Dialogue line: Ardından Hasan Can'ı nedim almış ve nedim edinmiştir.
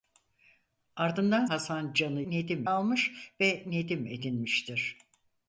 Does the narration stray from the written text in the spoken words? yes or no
no